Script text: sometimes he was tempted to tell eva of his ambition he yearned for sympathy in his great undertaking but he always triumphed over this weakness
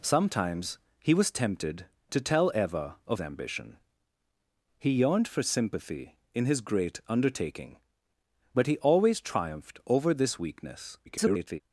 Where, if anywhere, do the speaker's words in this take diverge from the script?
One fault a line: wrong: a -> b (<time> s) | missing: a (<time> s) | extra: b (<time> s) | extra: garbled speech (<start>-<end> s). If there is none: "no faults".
missing: his (3.2 s)
extra: garbled speech (11.1-11.6 s)